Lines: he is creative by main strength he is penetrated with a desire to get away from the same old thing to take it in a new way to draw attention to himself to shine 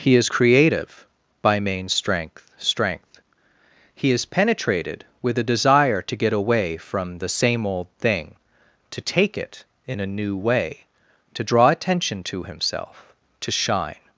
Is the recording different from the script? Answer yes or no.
yes